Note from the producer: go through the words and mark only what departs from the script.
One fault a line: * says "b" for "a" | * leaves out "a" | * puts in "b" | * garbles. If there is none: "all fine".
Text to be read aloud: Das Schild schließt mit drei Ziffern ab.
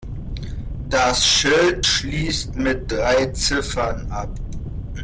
all fine